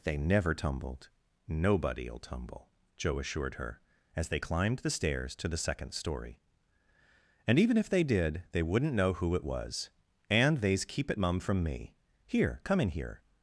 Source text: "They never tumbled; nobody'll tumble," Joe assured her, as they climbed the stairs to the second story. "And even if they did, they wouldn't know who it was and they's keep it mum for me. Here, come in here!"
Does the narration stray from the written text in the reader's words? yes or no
yes